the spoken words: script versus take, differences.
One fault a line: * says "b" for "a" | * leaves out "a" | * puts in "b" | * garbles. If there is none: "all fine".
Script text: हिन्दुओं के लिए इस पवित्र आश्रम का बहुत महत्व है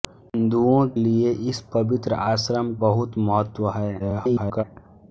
* leaves out "के"
* leaves out "का"
* garbles